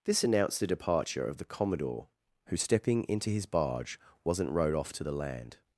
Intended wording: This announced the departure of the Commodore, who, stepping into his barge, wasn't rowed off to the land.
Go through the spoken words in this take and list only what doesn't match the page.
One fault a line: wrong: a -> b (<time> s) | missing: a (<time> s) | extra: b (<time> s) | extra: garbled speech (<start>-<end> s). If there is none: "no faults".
no faults